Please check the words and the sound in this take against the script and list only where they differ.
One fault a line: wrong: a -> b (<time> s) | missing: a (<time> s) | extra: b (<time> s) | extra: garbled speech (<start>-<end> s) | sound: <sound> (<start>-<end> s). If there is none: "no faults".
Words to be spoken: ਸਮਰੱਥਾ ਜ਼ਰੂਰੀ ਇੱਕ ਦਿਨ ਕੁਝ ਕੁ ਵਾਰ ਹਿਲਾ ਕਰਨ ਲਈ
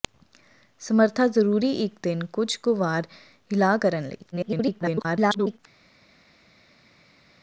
extra: garbled speech (4.3-5.6 s)